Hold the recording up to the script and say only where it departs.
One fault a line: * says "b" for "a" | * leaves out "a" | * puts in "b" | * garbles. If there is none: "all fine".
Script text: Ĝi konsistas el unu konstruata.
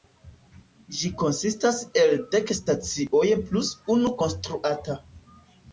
* puts in "dek stacioj plus"